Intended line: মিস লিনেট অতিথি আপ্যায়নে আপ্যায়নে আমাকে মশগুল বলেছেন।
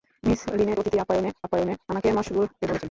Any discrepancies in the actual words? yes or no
no